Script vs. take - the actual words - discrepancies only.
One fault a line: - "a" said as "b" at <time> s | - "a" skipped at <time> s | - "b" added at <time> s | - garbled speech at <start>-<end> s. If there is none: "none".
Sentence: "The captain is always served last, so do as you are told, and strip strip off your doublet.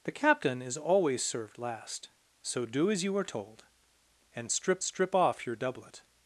none